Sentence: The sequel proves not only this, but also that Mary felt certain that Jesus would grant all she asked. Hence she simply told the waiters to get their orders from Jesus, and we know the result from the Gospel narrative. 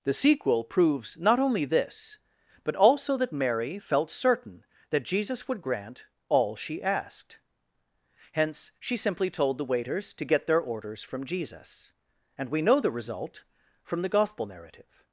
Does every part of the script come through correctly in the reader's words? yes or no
yes